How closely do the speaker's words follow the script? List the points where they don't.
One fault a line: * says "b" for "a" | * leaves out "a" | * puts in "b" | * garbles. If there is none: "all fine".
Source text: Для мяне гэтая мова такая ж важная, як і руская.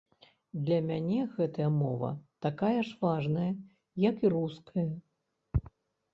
all fine